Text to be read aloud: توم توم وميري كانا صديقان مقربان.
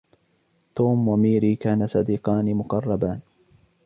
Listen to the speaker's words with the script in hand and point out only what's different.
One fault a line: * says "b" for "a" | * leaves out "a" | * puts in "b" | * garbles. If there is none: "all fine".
* leaves out "توم"